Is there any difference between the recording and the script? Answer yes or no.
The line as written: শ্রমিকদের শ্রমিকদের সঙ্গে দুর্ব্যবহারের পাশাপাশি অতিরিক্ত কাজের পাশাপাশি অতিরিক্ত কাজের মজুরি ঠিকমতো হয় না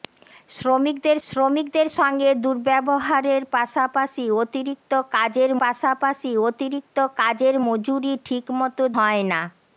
no